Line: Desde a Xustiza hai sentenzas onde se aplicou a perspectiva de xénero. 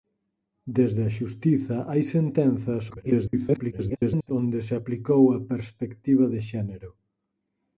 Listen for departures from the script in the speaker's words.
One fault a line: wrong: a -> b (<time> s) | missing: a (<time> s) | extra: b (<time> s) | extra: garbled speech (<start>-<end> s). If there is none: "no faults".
extra: garbled speech (2.9-4.3 s)